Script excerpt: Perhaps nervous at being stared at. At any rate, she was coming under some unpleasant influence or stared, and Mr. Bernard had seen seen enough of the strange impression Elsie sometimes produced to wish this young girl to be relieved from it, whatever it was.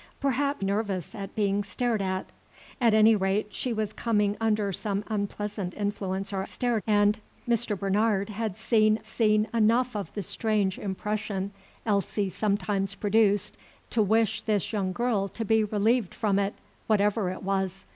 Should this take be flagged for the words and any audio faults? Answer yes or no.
no